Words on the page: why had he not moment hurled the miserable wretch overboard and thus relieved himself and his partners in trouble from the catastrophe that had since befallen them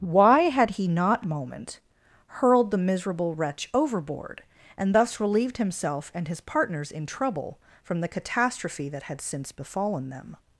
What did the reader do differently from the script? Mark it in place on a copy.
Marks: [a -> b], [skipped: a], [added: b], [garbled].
why had he not moment hurled the miserable wretch overboard and thus relieved himself and his partners in trouble from the catastrophe that had since befallen them